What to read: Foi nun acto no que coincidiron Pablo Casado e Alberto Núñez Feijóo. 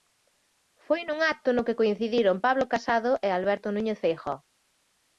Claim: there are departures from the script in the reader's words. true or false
false